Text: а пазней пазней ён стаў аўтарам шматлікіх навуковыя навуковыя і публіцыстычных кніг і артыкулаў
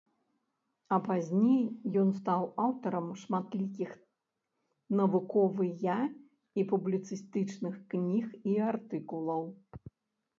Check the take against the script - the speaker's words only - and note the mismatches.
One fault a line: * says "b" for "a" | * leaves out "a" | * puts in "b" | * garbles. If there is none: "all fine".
* leaves out "пазней"
* leaves out "навуковыя"